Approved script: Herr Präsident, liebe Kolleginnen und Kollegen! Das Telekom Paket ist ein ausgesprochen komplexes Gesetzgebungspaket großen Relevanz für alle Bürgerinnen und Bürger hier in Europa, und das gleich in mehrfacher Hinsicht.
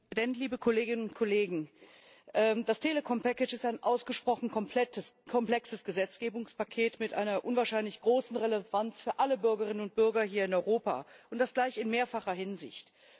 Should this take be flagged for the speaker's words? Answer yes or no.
yes